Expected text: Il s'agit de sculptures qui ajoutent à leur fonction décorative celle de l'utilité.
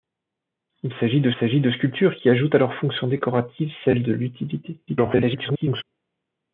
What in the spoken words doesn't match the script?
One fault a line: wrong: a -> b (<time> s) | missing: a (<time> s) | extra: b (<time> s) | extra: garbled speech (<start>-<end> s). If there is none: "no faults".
extra: s'agit de (1.4 s)
extra: garbled speech (4.9-5.8 s)